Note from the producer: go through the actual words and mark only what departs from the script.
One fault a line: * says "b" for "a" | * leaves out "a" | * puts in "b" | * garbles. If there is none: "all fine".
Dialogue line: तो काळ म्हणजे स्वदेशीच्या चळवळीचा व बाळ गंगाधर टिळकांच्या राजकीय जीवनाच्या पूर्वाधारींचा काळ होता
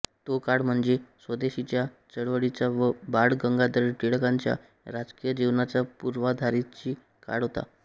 all fine